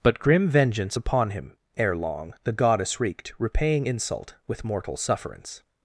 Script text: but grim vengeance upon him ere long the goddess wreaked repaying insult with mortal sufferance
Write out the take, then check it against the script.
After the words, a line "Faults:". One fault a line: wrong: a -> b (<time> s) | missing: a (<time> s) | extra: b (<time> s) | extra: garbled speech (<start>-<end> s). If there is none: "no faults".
but grim vengeance upon him ere long the goddess wreaked repaying insult with mortal sufferance
Faults:
no faults